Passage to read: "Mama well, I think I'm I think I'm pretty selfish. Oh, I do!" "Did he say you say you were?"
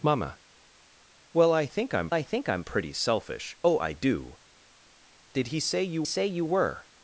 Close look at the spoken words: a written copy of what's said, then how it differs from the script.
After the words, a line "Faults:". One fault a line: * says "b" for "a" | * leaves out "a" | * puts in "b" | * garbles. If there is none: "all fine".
"Mama well, I think I'm I think I'm pretty selfish. Oh, I do!" "Did he say you say you were?"
Faults:
all fine